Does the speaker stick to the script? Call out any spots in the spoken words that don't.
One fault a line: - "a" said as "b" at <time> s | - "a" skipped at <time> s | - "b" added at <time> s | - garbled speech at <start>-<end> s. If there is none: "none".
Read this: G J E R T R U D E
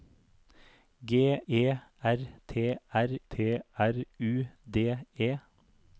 - "J E" said as "E R T" at 1.5 s